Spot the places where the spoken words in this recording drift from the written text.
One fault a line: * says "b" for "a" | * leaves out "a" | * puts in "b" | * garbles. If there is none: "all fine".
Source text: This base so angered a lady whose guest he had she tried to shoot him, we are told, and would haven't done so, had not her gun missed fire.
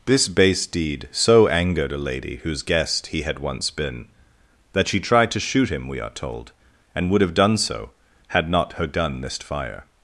* puts in "deed"
* puts in "once been that"
* says "have" for "haven't"